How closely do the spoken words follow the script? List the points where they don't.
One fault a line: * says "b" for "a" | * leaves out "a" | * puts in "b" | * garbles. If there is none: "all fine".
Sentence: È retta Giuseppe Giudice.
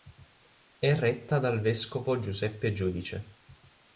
* puts in "dal vescovo"